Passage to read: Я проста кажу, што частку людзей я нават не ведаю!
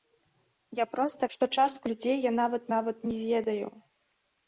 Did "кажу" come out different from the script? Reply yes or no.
yes